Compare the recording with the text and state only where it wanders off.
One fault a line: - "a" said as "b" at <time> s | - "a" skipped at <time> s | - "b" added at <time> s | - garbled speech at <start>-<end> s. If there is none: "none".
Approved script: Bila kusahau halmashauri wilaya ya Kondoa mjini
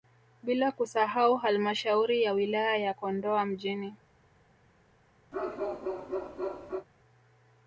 - "ya" added at 2.2 s